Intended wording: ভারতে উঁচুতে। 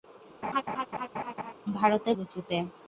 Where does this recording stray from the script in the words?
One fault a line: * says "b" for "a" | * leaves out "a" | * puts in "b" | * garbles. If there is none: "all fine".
all fine